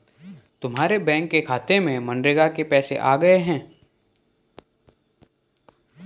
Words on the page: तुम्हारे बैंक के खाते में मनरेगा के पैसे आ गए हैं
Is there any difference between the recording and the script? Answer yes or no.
no